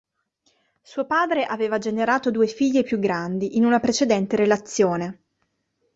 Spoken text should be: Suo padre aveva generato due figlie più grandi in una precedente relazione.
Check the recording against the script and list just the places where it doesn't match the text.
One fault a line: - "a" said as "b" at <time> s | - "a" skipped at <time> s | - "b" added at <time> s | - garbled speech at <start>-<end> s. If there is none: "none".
none